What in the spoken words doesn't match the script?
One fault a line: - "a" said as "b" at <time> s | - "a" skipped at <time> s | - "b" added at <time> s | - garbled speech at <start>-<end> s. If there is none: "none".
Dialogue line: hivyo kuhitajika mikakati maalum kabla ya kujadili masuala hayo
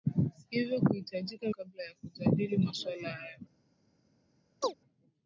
- "mikakati maalum" skipped at 1.5 s